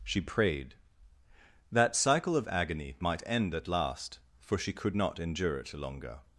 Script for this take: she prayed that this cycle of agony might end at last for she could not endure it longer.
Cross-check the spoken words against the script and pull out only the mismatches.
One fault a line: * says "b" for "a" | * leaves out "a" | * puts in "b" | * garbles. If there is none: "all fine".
* leaves out "this"